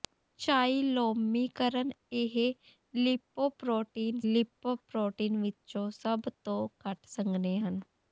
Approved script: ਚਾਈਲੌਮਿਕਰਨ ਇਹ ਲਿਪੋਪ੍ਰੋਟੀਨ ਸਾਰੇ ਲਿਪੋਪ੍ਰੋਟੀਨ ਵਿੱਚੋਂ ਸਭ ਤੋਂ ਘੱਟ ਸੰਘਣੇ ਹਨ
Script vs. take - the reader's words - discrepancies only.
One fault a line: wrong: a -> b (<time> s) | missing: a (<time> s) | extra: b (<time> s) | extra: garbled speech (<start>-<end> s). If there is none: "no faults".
missing: ਸਾਰੇ (4.2 s)